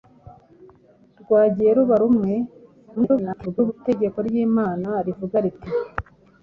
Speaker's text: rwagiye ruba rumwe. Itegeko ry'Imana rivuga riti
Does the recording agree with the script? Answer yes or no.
no